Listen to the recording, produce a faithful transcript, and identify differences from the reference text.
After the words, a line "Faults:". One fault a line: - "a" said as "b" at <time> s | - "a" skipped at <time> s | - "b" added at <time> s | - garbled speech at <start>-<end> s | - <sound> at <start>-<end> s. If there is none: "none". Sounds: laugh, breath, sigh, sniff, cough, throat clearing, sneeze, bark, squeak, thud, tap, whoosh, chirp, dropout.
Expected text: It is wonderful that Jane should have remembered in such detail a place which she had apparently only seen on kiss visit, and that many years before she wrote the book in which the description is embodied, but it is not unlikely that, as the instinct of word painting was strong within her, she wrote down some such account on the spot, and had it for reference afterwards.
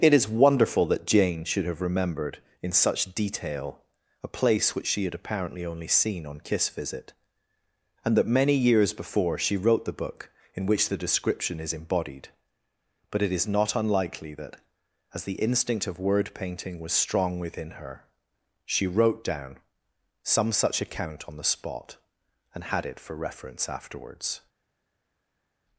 It is wonderful that Jane should have remembered in such detail a place which she had apparently only seen on kiss visit, and that many years before she wrote the book in which the description is embodied, but it is not unlikely that, as the instinct of word painting was strong within her, she wrote down some such account on the spot, and had it for reference afterwards.
Faults:
none